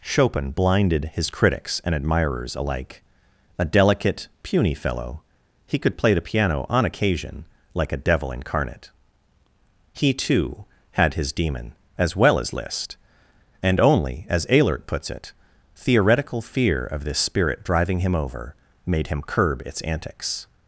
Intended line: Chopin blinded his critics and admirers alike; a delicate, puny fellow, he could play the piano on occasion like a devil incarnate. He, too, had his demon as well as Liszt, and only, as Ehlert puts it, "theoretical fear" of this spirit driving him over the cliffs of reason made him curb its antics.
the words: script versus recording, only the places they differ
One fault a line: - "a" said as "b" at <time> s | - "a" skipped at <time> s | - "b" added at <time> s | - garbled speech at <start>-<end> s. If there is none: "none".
- "the cliffs of reason" skipped at 18.5 s